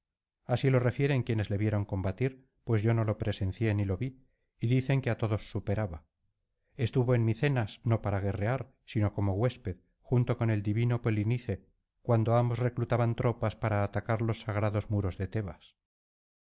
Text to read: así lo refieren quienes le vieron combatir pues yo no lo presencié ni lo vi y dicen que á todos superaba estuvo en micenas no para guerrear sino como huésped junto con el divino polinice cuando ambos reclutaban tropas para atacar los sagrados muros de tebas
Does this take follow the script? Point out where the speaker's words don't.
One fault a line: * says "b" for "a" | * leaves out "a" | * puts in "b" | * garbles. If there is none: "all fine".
all fine